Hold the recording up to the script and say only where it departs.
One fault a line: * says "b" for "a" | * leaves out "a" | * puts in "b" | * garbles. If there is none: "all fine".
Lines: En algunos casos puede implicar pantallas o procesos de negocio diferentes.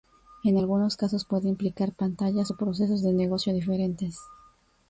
all fine